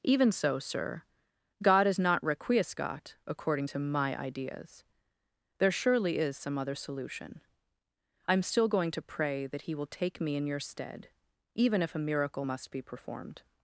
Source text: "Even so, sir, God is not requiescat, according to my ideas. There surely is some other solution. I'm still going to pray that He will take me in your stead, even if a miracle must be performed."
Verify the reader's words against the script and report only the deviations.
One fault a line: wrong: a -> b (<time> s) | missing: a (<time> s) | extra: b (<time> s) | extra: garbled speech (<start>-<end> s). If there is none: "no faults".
no faults